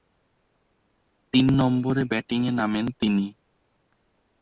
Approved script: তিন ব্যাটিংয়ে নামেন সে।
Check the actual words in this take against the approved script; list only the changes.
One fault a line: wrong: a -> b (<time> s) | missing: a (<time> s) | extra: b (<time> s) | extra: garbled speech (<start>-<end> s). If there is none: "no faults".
extra: নম্বরে (1.5 s)
wrong: সে -> তিনি (3.0 s)